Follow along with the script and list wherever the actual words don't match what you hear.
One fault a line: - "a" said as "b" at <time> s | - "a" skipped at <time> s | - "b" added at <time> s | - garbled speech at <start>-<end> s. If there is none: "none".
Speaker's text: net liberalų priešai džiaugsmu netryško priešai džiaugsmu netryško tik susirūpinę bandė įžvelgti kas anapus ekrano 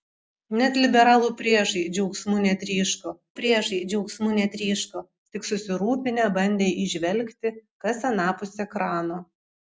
none